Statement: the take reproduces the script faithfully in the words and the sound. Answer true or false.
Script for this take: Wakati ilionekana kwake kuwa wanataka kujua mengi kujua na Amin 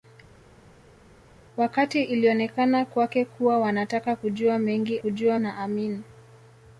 true